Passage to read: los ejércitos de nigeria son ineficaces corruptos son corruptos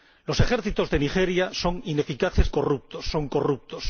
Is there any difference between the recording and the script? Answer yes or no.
no